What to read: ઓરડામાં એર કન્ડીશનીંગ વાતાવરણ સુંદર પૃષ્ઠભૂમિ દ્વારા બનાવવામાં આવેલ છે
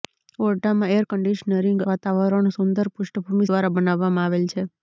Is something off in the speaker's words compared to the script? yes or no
no